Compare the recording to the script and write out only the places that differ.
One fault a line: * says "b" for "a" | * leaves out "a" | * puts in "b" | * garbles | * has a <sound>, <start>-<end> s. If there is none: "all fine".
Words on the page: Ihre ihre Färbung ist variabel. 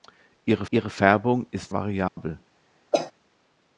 * has a dropout, 2.1-2.2 s
* has a cough, 2.9-3.1 s